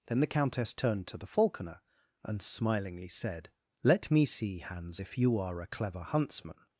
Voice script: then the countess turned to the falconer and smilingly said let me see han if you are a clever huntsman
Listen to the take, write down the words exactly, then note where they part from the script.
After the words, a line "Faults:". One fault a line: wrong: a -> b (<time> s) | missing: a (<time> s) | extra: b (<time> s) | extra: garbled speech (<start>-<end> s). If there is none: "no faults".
then the countess turned to the falconer and smilingly said let me see hans if you are a clever huntsman
Faults:
wrong: han -> hans (4.6 s)